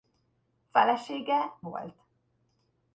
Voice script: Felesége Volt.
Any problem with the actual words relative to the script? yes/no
no